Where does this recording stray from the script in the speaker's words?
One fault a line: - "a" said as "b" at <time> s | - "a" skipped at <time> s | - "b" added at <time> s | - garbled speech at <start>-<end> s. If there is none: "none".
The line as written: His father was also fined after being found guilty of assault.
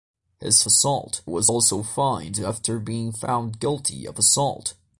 - "father" said as "assault" at 0.7 s